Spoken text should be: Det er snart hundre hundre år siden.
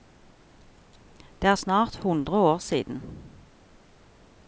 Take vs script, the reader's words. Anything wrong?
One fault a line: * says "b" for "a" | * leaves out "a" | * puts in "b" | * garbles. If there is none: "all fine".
* leaves out "hundre"